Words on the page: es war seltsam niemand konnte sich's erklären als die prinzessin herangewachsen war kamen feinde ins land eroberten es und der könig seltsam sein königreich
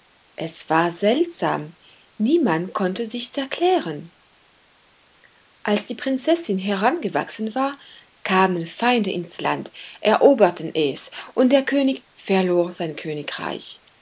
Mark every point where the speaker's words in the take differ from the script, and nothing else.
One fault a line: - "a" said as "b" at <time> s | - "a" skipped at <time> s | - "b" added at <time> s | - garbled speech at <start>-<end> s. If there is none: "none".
- "seltsam" said as "verlor" at 12.1 s